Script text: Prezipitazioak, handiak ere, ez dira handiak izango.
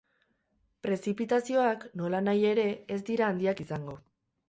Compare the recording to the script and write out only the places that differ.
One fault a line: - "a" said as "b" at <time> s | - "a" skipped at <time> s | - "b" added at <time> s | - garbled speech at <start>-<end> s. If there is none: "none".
- "handiak" said as "nolanahi" at 2.0 s